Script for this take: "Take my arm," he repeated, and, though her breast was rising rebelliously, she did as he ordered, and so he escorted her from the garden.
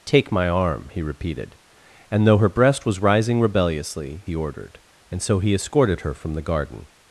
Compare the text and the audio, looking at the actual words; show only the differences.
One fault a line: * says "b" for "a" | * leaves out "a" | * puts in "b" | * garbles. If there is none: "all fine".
* leaves out "she did as"